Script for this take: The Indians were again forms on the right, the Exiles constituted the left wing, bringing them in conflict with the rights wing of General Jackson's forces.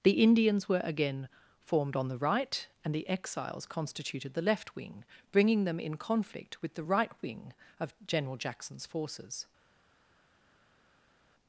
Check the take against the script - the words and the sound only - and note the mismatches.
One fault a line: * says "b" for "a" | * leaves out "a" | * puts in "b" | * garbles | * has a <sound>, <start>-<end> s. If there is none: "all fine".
* says "formed" for "forms"
* puts in "and"
* says "right" for "rights"